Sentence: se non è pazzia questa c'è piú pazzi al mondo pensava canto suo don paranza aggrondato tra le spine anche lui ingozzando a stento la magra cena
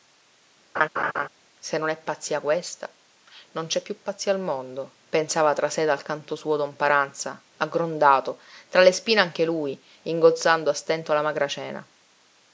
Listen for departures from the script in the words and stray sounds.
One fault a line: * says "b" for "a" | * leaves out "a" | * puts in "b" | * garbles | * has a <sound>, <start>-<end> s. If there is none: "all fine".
* has a laugh, 0.8-1.3 s
* puts in "non"
* puts in "tra sé dal"